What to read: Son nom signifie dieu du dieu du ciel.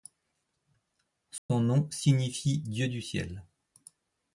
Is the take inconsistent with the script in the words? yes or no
yes